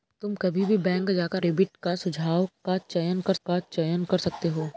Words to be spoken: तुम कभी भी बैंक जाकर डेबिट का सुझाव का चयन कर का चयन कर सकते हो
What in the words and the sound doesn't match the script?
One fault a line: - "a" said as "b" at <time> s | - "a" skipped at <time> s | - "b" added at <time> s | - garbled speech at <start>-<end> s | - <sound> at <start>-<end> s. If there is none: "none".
none